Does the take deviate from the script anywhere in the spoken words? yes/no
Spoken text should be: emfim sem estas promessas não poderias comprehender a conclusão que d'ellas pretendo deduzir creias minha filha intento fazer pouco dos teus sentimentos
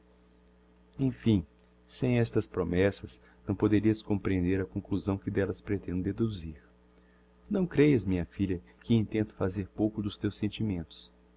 yes